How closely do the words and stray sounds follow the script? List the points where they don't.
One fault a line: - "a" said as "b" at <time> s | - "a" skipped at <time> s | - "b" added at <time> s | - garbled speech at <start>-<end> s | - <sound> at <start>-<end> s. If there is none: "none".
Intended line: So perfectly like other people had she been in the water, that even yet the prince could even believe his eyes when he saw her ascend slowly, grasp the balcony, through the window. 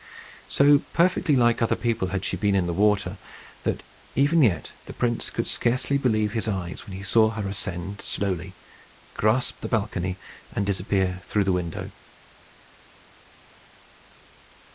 - "even" said as "scarcely" at 5.5 s
- "and disappear" added at 10.5 s